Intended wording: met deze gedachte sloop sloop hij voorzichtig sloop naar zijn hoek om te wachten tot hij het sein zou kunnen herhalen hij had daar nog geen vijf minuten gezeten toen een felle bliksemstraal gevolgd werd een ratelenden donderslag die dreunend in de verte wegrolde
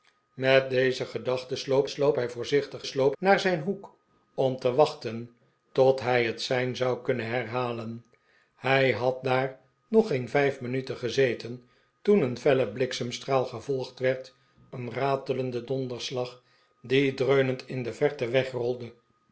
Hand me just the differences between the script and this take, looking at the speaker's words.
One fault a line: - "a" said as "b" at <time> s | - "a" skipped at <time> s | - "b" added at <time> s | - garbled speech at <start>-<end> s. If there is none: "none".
none